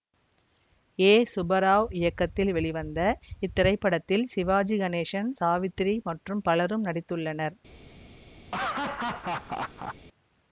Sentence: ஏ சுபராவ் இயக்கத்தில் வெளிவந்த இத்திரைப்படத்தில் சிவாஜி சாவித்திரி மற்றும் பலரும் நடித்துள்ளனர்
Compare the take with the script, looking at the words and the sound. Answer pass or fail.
fail